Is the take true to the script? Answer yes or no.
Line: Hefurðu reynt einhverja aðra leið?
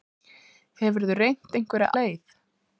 no